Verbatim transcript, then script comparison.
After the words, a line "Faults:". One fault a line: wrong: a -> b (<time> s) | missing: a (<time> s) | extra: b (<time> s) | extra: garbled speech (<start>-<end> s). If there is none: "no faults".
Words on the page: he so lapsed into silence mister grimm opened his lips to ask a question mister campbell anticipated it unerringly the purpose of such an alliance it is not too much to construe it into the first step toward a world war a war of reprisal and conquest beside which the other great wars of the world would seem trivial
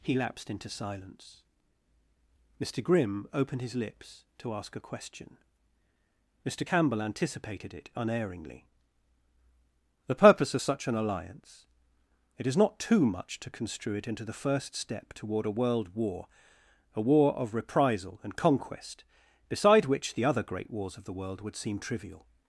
he lapsed into silence mister grimm opened his lips to ask a question mister campbell anticipated it unerringly the purpose of such an alliance it is not too much to construe it into the first step toward a world war a war of reprisal and conquest beside which the other great wars of the world would seem trivial
Faults:
missing: so (0.1 s)